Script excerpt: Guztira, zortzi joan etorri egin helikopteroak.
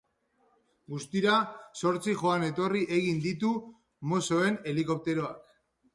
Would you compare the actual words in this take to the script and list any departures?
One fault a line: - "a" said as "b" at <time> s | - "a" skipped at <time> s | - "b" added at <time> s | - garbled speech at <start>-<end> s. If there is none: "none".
- "ditu mossoen" added at 3.2 s